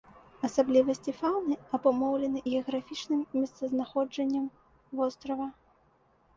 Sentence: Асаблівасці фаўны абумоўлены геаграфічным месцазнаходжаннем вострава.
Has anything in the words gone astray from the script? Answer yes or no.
no